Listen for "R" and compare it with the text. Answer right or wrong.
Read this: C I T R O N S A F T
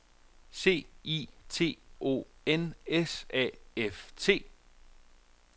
wrong